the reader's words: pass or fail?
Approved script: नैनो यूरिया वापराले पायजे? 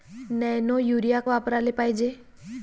pass